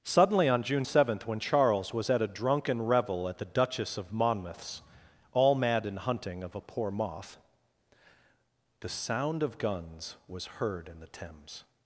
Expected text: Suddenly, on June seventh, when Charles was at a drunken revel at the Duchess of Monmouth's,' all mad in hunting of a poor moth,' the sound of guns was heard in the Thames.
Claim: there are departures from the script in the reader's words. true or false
false